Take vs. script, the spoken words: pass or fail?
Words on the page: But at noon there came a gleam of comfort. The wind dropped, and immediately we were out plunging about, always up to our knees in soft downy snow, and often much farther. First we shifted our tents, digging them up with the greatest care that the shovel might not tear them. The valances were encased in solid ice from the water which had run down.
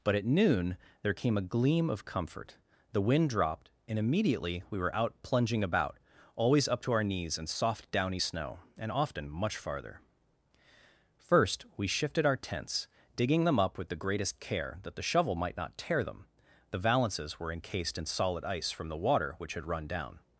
pass